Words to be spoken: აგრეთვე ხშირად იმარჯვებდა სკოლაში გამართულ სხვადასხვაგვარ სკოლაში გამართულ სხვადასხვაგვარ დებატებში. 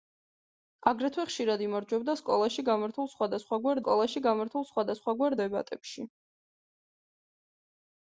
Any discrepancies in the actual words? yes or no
no